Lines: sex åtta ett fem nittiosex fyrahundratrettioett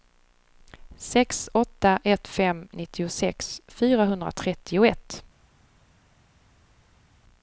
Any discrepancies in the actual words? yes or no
no